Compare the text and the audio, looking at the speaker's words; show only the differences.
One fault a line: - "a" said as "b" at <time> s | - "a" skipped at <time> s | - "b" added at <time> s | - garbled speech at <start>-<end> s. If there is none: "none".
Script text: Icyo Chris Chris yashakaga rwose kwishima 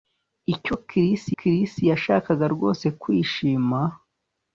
none